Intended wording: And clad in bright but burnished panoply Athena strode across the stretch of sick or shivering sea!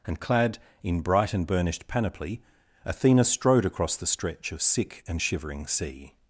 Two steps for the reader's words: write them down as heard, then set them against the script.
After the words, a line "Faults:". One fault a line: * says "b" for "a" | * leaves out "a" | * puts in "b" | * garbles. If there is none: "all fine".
And clad in bright and burnished panoply Athena strode across the stretch of sick and shivering sea!
Faults:
* says "and" for "but"
* says "and" for "or"